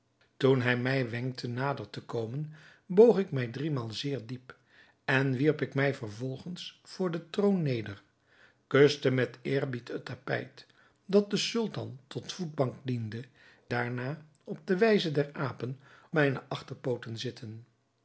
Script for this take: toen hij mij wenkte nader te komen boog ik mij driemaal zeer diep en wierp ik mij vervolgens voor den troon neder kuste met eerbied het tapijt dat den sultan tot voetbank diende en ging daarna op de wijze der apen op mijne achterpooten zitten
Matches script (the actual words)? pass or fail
fail